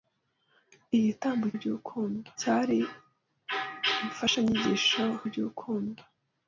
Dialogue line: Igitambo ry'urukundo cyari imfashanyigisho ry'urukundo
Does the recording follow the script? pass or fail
pass